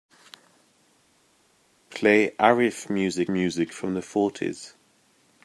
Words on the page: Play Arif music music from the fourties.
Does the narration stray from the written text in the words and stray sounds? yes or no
no